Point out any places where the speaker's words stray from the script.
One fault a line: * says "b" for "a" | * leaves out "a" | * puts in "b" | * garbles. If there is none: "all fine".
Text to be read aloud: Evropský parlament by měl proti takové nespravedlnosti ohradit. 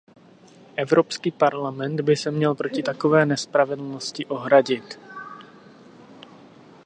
* puts in "se"